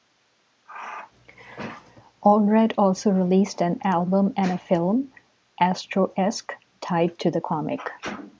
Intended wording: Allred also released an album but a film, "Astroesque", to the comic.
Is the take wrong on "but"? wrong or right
wrong